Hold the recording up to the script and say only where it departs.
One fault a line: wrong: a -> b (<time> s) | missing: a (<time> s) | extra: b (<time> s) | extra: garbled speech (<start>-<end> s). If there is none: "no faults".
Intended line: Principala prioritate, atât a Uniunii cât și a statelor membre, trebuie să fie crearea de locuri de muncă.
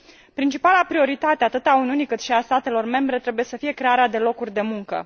no faults